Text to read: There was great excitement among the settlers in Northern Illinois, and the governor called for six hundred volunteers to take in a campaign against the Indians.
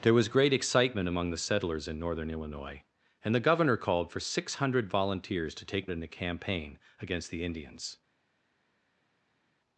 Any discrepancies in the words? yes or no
no